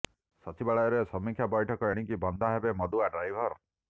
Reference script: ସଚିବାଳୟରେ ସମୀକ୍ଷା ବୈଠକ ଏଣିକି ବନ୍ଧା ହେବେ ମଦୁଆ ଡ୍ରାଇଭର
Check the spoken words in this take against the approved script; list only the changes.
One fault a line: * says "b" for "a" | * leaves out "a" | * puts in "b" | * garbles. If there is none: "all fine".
all fine